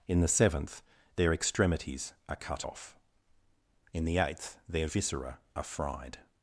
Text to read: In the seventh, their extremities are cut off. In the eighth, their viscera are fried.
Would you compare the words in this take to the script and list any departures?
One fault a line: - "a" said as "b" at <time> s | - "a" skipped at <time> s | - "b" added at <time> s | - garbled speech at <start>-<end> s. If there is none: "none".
none